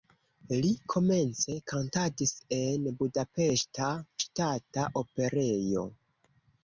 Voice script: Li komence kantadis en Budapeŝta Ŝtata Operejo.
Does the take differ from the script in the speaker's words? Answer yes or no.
no